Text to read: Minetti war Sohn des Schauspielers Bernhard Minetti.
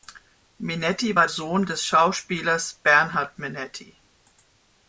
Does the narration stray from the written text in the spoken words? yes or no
no